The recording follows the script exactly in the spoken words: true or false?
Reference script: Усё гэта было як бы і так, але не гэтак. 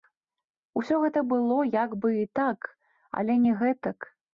true